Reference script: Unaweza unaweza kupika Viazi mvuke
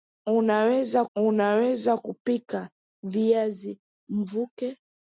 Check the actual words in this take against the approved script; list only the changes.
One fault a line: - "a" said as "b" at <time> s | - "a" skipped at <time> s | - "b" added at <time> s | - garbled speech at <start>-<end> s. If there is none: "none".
none